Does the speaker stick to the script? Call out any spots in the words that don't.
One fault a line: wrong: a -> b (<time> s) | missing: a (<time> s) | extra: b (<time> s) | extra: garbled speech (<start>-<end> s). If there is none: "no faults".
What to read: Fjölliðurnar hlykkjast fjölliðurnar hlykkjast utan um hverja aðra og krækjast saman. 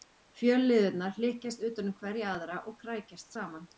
missing: fjölliðurnar hlykkjast (1.6 s)